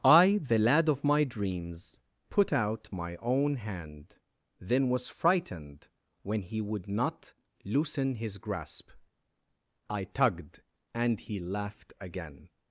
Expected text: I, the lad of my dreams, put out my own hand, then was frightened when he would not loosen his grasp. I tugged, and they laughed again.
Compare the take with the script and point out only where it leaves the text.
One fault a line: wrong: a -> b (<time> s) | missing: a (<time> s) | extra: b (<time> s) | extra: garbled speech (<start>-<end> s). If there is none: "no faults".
wrong: they -> he (11.2 s)